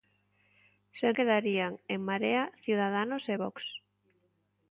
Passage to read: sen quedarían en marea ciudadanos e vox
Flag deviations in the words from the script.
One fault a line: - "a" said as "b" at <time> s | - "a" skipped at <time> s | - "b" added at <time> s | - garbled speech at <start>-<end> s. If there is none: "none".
none